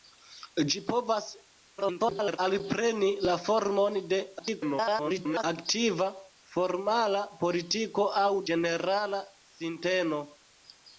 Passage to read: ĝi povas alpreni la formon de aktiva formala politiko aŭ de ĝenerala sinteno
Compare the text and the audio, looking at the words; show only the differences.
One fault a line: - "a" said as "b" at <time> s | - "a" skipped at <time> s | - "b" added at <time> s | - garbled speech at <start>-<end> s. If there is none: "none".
- garbled speech at 1.8-2.4 s
- garbled speech at 4.4-5.4 s
- "de" skipped at 8.3 s